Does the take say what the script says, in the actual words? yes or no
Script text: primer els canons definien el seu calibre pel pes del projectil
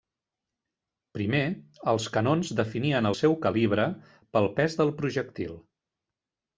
yes